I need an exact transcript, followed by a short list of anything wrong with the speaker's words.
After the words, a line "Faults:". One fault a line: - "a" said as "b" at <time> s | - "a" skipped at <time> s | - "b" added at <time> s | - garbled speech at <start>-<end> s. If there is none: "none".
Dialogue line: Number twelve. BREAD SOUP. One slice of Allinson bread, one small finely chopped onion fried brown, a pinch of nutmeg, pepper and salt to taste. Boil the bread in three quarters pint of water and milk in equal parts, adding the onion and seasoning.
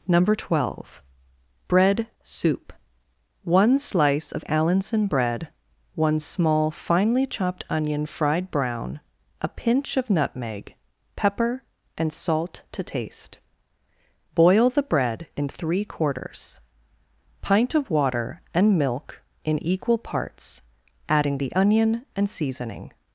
Number twelve. BREAD SOUP. One slice of Allinson bread, one small finely chopped onion fried brown, a pinch of nutmeg, pepper and salt to taste. Boil the bread in three quarters pint of water and milk in equal parts, adding the onion and seasoning.
Faults:
none